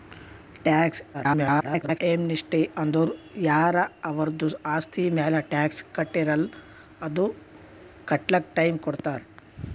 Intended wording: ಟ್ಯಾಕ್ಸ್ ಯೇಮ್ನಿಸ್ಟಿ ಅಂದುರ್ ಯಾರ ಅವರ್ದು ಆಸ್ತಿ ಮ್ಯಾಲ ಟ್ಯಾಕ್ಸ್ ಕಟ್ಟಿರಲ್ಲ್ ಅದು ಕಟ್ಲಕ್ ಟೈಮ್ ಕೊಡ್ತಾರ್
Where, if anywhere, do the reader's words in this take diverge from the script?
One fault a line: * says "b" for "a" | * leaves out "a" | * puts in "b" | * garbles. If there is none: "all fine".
* garbles